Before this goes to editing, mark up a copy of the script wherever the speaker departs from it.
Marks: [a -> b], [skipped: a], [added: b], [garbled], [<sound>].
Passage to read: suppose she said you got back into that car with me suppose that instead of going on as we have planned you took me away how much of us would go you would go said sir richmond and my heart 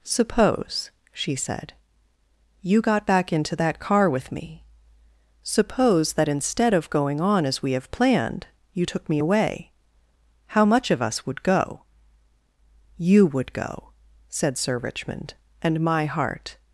suppose she said you got back into that car with me suppose that instead of going on as we have planned you took me away how much of us would go you would go said sir richmond and my heart